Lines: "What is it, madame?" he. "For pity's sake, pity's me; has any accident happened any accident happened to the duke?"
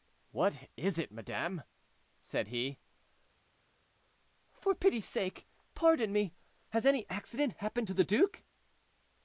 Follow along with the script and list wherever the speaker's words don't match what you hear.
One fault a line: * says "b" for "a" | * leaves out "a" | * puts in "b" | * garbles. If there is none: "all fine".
* puts in "said"
* says "pardon" for "pity's"
* leaves out "any accident happened"